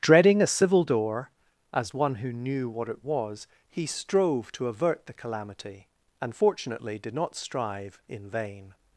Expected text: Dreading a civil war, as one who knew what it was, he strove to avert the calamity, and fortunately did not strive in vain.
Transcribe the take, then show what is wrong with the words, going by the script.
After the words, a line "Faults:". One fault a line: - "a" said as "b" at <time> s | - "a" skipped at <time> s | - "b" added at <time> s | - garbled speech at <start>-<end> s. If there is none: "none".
Dreading a civil door, as one who knew what it was, he strove to avert the calamity, and fortunately did not strive in vain.
Faults:
- "war" said as "door" at 0.8 s